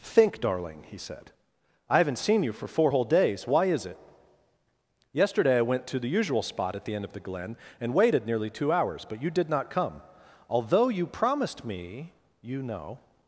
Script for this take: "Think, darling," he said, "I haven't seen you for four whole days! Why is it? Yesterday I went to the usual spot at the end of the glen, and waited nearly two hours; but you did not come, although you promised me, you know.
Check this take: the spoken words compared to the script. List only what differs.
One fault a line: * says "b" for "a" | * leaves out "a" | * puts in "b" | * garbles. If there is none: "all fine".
all fine